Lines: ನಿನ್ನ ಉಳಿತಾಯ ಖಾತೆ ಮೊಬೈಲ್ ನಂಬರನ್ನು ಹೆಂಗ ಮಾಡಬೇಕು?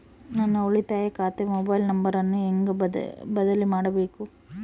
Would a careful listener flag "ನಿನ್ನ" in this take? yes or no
yes